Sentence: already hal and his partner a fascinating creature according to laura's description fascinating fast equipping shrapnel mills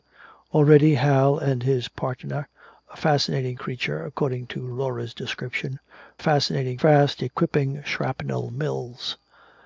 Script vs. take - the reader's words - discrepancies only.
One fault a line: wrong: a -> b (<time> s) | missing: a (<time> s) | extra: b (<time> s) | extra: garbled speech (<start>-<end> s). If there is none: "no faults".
no faults